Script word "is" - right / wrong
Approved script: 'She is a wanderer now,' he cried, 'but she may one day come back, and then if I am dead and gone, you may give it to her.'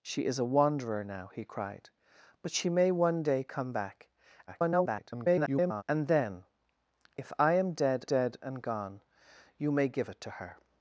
right